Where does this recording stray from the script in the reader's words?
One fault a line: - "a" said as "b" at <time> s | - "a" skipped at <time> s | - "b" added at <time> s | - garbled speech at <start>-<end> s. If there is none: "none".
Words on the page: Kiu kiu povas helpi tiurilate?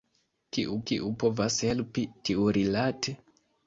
none